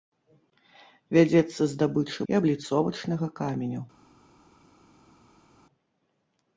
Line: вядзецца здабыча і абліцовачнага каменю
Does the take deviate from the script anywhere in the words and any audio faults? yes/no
no